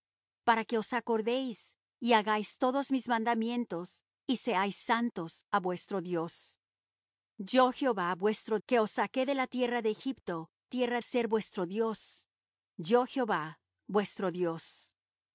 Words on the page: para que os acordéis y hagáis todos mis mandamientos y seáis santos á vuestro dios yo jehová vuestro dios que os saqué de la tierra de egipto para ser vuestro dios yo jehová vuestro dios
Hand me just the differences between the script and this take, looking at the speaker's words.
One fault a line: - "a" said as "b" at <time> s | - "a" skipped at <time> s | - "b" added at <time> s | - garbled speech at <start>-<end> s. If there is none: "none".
- "dios" skipped at 8.6 s
- "para" said as "tierra" at 10.7 s